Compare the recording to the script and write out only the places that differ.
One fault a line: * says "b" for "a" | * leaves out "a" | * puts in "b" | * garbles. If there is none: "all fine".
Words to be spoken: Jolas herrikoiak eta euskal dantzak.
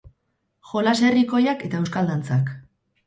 all fine